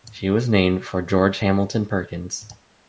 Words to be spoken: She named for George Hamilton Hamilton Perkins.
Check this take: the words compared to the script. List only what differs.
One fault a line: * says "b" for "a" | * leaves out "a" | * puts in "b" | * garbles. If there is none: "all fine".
* puts in "was"
* leaves out "Hamilton"